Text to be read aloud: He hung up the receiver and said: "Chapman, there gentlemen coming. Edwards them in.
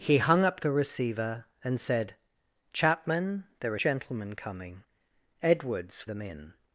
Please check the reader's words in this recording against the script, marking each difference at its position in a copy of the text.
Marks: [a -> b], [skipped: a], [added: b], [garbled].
He hung up the receiver and said: "Chapman, there gentlemen coming. Edwards them in.